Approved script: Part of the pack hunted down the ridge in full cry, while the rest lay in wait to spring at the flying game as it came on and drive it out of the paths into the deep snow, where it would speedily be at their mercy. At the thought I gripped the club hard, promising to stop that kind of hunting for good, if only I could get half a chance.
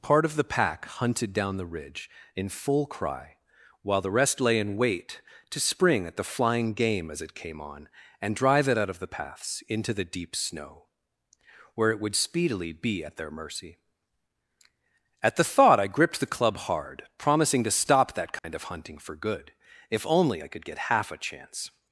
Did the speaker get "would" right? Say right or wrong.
right